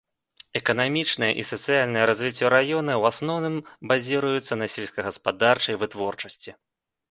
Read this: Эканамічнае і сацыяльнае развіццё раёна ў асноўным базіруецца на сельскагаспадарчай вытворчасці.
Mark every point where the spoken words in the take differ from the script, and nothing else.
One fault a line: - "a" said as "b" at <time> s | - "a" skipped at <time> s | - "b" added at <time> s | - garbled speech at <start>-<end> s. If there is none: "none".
none